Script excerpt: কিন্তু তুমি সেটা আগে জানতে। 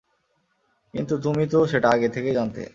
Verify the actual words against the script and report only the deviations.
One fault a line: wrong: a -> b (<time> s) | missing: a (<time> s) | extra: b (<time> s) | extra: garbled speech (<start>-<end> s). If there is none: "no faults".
extra: তো (1.5 s)
extra: থেকেই (2.1 s)